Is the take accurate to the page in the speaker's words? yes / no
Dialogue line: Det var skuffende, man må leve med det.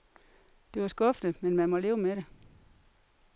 no